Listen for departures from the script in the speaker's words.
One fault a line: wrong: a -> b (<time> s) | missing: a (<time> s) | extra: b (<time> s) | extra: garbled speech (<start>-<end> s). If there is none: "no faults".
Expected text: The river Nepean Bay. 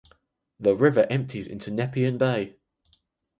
extra: empties into (1.1 s)